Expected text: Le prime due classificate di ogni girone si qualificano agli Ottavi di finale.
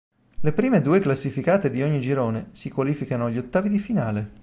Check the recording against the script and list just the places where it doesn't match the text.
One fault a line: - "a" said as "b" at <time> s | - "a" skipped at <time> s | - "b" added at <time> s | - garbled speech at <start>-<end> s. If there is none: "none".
none